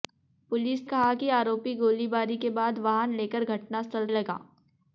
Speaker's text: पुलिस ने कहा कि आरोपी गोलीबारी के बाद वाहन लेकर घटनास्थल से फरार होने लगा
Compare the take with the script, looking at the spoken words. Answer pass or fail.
fail